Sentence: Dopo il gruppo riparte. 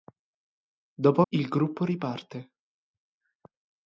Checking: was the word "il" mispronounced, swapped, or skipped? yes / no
no